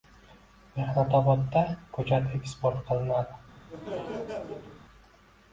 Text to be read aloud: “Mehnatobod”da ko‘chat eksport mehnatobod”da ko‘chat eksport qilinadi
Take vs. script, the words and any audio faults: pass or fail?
fail